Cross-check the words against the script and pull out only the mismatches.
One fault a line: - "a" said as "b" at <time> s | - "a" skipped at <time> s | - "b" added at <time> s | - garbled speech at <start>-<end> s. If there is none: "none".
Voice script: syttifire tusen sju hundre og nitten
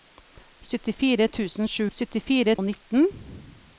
- "hundre" said as "syttifire" at 2.0 s